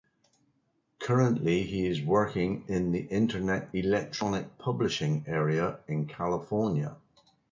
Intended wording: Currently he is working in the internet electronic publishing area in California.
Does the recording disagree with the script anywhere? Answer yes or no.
no